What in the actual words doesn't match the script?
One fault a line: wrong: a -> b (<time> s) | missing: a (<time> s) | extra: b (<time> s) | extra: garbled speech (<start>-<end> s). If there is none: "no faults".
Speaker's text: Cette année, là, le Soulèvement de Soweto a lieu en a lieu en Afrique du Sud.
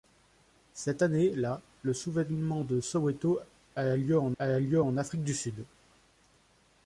no faults